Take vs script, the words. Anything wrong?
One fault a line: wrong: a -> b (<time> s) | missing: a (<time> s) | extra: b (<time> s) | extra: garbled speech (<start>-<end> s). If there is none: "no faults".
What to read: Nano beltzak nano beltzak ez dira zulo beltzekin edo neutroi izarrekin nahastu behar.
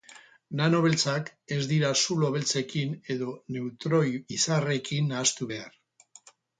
missing: nano beltzak (1.3 s)